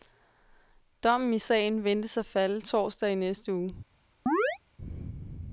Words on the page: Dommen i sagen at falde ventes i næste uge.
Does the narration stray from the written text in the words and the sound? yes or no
yes